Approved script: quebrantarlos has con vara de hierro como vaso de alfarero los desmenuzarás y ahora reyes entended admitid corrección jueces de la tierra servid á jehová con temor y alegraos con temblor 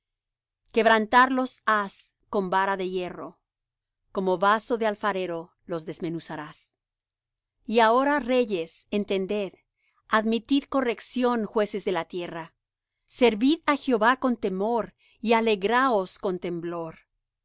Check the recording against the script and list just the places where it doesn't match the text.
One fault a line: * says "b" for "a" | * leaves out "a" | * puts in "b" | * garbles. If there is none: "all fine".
all fine